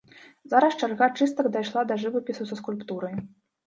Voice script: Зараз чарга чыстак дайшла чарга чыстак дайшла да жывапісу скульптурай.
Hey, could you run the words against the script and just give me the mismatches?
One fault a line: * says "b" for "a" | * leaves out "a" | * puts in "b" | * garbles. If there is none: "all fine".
* leaves out "чарга чыстак дайшла"
* puts in "са"